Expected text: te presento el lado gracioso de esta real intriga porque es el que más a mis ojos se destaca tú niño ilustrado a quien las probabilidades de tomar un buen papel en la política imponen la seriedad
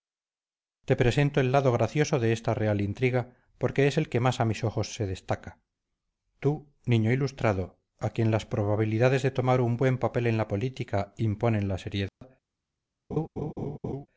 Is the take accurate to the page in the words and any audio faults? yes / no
no